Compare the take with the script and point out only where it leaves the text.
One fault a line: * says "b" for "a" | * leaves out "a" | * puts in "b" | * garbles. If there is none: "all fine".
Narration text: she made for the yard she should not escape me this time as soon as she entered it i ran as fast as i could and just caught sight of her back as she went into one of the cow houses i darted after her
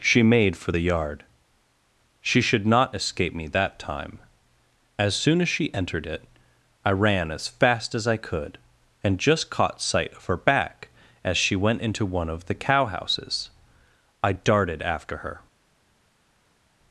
* says "that" for "this"